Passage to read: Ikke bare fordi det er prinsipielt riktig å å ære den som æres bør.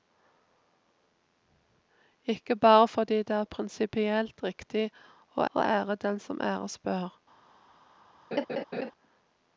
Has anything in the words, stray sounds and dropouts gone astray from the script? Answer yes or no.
yes